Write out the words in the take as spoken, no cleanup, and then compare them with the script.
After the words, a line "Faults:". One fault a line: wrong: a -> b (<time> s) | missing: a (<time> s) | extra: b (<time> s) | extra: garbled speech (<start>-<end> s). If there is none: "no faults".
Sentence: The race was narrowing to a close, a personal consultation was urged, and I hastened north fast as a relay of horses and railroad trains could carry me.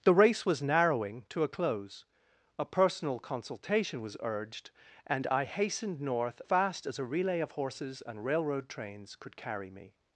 The race was narrowing to a close, a personal consultation was urged, and I hastened north fast as a relay of horses and railroad trains could carry me.
Faults:
no faults